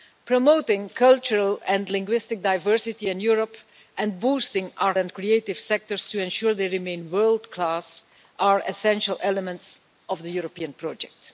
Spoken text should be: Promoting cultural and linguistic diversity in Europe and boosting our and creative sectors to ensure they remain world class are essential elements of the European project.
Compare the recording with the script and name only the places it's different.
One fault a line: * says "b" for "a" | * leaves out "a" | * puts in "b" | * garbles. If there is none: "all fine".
all fine